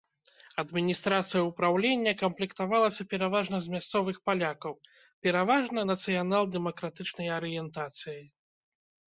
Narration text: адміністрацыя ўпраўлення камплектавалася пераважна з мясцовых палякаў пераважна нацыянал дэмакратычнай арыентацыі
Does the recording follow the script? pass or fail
pass